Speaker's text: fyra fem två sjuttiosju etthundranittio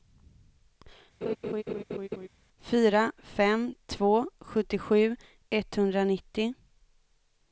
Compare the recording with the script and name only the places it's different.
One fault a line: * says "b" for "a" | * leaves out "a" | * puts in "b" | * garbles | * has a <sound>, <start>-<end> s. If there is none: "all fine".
* has a laugh, 1.2-2.3 s